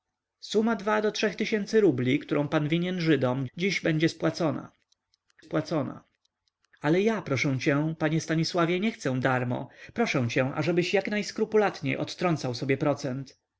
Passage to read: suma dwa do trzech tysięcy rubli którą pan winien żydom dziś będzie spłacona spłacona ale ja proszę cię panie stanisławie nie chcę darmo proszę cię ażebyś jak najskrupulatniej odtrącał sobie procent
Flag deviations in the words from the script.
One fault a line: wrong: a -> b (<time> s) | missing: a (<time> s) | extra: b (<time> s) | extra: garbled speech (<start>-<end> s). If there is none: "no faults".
no faults